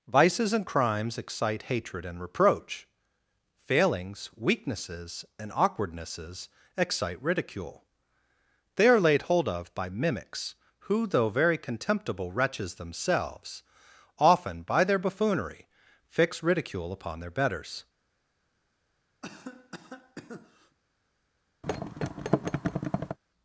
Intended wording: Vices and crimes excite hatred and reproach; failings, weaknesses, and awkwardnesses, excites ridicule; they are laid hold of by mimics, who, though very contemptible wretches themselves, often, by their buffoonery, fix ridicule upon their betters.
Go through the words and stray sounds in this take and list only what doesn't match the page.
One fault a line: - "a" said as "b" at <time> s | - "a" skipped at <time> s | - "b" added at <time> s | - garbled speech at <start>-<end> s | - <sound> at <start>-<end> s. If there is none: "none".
- "excites" said as "excite" at 6.8 s
- cough at 19.2-20.8 s
- thud at 21.6-23.2 s